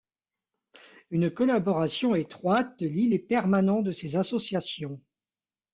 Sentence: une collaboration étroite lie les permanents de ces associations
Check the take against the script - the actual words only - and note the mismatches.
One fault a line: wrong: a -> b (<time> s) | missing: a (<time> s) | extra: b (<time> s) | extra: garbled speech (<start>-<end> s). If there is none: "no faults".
no faults